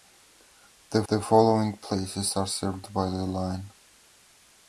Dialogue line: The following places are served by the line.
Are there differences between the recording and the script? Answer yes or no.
yes